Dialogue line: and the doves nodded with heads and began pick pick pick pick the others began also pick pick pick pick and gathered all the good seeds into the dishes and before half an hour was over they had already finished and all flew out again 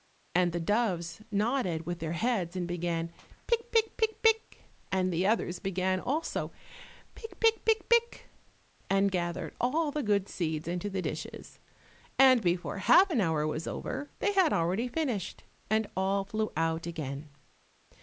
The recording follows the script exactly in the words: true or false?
false